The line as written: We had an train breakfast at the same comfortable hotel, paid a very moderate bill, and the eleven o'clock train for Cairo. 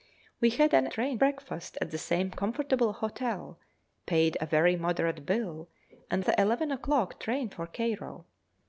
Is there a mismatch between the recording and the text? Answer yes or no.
no